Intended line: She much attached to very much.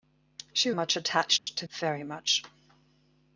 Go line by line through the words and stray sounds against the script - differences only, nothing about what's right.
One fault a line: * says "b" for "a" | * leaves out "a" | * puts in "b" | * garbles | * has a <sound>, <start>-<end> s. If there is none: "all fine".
* has a dropout, 1.4-1.5 s